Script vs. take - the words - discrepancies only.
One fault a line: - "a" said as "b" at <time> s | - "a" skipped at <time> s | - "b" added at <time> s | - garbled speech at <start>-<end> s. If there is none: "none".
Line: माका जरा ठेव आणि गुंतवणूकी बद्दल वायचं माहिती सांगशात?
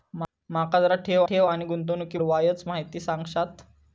- "ठेव" added at 1.3 s
- "बद्दल" skipped at 2.2 s